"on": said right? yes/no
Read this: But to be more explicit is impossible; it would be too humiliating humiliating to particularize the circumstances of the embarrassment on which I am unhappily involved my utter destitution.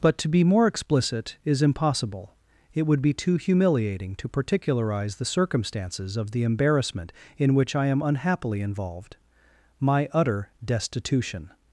no